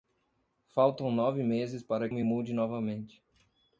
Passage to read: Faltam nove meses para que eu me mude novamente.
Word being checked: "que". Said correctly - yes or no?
no